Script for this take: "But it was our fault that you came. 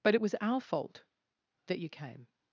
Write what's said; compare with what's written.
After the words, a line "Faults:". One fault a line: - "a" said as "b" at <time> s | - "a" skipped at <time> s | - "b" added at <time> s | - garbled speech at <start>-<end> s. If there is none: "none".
"But it was our fault that you came.
Faults:
none